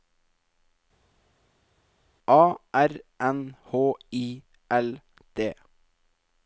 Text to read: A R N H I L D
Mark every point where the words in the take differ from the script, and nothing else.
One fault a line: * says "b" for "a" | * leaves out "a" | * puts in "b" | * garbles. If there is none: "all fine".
all fine